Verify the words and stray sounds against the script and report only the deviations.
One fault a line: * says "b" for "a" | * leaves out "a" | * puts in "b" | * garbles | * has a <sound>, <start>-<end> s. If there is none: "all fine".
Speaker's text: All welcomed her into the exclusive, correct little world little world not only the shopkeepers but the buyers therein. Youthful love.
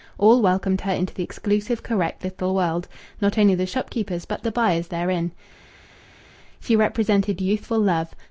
* leaves out "little world"
* puts in "She represented"